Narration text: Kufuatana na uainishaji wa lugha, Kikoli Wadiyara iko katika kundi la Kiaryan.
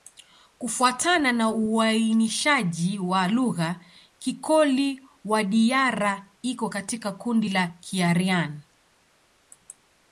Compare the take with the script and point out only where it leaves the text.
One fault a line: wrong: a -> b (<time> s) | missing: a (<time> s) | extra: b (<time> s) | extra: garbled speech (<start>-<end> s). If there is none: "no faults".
no faults